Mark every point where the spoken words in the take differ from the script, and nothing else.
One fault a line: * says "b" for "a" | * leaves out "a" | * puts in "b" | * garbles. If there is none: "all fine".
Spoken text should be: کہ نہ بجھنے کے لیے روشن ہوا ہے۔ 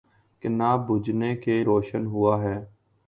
* leaves out "لیے"